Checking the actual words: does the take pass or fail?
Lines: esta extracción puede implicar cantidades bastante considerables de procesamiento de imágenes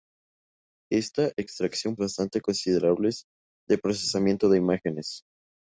fail